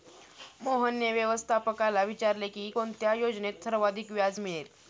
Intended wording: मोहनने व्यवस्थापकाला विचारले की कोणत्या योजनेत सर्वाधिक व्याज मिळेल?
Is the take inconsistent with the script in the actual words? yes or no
no